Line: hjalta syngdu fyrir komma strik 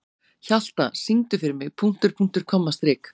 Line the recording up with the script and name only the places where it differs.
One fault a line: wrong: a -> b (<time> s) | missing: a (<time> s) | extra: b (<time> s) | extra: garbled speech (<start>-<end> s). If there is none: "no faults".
extra: mig punktur punktur (1.6 s)